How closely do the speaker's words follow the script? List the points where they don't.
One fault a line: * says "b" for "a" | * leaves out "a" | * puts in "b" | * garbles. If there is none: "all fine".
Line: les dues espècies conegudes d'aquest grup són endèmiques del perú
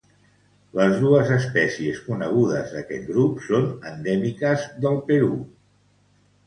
all fine